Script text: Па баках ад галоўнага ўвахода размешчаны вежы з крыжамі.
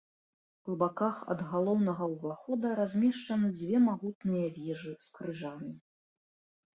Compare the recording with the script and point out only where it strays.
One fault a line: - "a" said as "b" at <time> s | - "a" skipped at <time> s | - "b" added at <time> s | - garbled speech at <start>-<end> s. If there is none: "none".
- "дзве магутныя" added at 3.6 s